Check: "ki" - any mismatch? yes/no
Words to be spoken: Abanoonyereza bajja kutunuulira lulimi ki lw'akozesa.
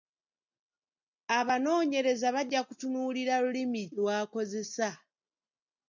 yes